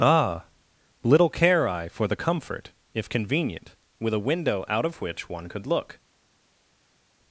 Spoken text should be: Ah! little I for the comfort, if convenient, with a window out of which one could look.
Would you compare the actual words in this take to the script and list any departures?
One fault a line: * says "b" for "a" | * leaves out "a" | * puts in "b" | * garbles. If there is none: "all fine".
* puts in "care"